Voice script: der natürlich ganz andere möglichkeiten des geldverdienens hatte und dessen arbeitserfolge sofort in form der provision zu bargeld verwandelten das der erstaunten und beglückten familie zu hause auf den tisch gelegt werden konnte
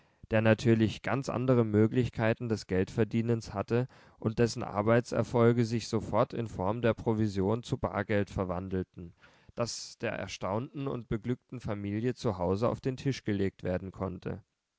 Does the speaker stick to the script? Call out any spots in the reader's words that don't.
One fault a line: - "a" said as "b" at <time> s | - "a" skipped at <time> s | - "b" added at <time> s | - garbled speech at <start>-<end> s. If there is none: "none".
- "sich" added at 5.6 s